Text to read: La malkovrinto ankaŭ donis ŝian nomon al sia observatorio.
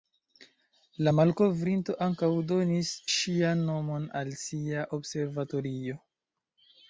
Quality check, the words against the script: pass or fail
pass